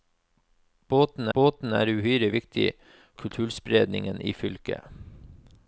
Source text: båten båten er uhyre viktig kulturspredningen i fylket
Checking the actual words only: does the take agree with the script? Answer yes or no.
yes